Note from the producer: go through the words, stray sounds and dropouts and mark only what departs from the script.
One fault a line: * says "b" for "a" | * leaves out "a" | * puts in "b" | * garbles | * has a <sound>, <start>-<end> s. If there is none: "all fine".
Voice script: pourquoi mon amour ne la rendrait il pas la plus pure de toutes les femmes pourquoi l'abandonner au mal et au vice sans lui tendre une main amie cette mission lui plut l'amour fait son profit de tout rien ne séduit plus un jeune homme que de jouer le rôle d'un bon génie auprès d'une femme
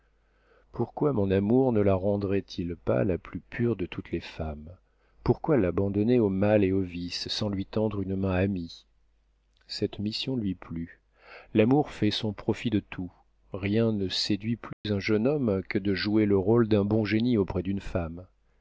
* has a dropout, 14.7-14.8 s